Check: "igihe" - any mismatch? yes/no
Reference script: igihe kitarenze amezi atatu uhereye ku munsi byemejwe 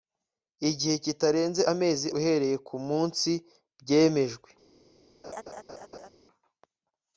no